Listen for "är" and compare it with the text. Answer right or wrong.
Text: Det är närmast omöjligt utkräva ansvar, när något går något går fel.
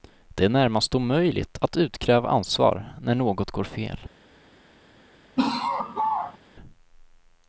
right